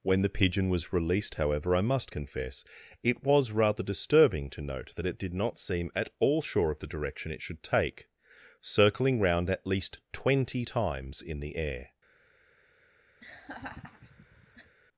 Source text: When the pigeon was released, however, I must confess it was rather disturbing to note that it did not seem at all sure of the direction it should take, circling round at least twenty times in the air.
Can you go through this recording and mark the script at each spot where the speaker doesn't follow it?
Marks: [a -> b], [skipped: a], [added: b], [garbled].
When the pigeon was released, however, I must confess it was rather disturbing to note that it did not seem at all sure of the direction it should take, circling round at least twenty times in the air.